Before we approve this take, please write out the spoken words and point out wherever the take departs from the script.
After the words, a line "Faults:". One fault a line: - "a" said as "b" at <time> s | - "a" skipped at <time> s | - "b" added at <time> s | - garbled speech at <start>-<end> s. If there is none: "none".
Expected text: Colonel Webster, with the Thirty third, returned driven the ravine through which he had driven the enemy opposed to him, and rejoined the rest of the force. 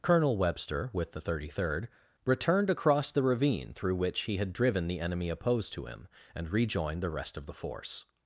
Colonel Webster, with the Thirty third, returned across the ravine through which he had driven the enemy opposed to him, and rejoined the rest of the force.
Faults:
- "driven" said as "across" at 2.7 s